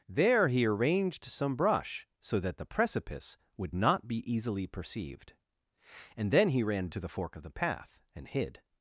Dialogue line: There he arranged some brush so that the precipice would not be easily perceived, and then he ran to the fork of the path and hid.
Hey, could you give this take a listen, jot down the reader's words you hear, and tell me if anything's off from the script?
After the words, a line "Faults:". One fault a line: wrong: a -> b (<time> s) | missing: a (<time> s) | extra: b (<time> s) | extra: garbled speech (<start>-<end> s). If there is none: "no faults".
There he arranged some brush so that the precipice would not be easily perceived, and then he ran to the fork of the path and hid.
Faults:
no faults